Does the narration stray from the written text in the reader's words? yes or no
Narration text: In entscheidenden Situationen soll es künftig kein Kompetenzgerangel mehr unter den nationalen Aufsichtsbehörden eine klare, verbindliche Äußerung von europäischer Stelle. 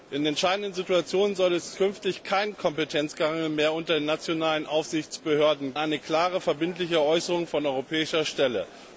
no